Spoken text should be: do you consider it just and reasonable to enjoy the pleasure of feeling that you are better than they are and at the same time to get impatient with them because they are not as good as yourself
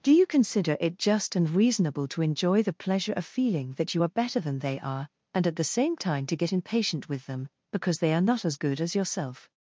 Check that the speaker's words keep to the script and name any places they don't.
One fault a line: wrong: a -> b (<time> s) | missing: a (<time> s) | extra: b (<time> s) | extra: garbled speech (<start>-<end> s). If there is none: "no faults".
no faults